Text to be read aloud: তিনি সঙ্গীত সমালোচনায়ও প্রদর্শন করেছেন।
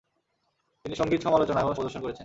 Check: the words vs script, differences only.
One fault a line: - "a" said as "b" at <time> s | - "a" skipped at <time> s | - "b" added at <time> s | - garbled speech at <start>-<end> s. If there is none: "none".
none